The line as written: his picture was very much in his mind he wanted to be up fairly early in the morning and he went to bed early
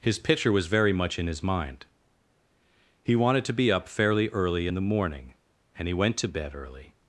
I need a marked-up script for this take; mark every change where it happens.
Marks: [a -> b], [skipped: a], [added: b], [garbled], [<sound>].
his picture was very much in his mind he wanted to be up fairly early in the morning and he went to bed early